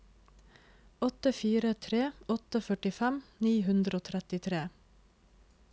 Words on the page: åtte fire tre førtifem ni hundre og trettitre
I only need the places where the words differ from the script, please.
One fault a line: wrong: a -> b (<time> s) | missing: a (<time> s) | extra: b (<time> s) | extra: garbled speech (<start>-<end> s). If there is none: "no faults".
extra: åtte (2.4 s)